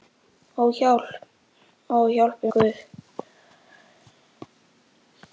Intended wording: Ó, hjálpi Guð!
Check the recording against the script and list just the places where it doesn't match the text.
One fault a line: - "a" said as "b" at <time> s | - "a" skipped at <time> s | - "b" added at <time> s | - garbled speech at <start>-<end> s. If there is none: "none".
none